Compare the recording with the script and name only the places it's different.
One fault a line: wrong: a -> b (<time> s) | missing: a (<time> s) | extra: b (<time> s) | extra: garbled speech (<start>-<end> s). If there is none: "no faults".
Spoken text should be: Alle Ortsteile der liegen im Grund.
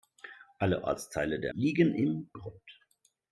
no faults